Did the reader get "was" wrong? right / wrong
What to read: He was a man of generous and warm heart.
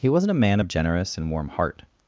wrong